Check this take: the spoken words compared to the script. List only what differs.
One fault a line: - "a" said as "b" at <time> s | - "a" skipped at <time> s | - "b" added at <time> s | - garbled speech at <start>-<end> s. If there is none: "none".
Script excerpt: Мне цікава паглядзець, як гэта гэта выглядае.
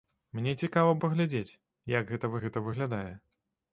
none